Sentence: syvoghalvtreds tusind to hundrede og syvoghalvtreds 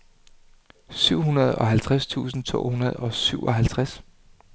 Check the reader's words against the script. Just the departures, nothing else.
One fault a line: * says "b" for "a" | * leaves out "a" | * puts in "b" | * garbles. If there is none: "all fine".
all fine